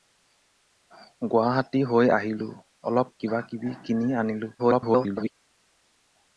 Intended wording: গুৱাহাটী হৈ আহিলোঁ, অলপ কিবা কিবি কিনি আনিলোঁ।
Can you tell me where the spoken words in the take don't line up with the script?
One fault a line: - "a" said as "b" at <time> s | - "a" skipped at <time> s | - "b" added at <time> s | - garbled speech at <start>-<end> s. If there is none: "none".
- garbled speech at 4.6-5.3 s